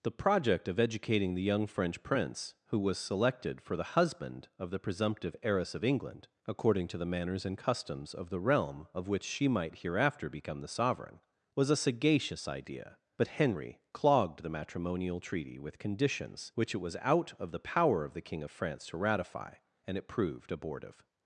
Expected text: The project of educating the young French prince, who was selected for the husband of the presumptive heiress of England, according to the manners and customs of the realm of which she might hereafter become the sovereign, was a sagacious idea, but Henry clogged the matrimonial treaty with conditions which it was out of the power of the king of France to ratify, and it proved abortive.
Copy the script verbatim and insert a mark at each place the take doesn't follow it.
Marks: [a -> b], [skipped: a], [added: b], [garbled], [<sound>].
The project of educating the young French prince, who was selected for the husband of the presumptive heiress of England, according to the manners and customs of the realm of which she might hereafter become the sovereign, was a sagacious idea, but Henry clogged the matrimonial treaty with conditions which it was out of the power of the king of France to ratify, and it proved abortive.